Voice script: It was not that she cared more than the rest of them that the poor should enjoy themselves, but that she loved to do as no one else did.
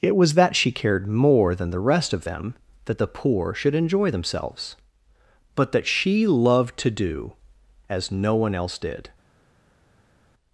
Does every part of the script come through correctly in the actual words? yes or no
no